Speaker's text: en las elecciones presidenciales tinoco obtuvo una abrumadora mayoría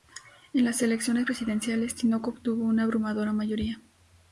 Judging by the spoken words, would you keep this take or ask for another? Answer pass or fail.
pass